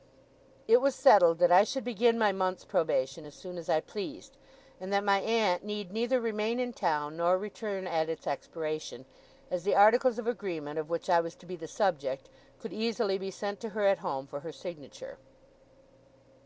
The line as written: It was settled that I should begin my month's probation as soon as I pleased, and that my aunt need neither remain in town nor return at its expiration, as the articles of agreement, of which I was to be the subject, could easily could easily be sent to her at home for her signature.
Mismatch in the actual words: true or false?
true